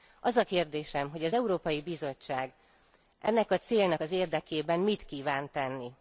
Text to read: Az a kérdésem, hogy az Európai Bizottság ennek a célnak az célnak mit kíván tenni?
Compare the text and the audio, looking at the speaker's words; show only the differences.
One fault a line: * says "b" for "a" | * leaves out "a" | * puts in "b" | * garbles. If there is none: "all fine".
* says "érdekében" for "célnak"